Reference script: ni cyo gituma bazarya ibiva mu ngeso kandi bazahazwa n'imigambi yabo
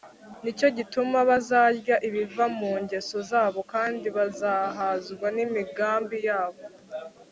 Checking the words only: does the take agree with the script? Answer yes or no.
no